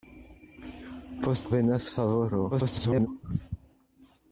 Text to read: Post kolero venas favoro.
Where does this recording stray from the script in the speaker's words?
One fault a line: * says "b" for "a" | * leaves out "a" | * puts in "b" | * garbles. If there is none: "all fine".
* leaves out "kolero"
* garbles